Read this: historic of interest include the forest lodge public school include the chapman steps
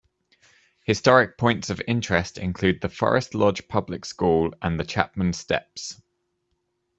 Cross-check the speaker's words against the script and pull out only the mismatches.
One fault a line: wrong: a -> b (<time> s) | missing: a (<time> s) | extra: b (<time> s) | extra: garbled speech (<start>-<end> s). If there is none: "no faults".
extra: points (1.4 s)
wrong: include -> and (4.6 s)